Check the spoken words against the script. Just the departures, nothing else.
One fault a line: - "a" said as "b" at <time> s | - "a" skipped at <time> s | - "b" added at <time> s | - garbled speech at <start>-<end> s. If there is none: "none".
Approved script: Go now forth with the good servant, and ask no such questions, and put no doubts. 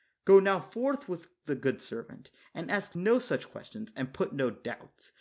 none